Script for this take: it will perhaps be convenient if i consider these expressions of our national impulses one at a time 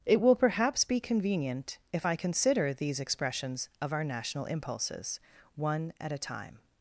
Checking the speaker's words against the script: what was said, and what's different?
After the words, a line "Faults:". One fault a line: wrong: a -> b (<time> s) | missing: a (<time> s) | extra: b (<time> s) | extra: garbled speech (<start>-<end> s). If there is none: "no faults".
it will perhaps be convenient if i consider these expressions of our national impulses one at a time
Faults:
no faults